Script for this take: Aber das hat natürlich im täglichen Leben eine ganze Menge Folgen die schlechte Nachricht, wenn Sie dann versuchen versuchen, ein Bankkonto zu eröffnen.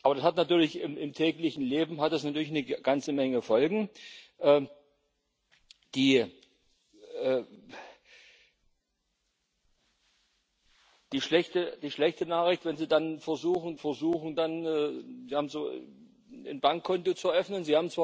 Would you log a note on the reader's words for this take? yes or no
no